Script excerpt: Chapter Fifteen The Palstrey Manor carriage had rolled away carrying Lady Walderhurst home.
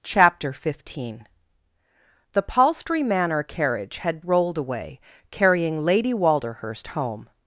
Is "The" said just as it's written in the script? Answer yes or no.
yes